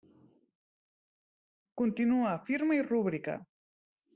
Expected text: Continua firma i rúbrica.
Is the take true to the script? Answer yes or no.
yes